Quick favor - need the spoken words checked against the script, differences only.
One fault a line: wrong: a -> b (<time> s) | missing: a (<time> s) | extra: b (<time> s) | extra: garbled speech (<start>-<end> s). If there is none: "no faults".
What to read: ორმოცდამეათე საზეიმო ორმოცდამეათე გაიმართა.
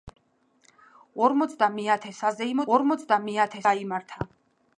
no faults